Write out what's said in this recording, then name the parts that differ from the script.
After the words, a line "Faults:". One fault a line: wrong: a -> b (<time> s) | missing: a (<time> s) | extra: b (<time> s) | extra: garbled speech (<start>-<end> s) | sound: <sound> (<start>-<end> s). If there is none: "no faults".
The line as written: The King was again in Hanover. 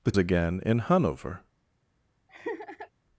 The Again in Hanover.
Faults:
missing: King was (0.1 s)
sound: laugh (2.3-2.9 s)